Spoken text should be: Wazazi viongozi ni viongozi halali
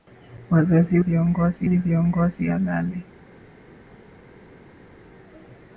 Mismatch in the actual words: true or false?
false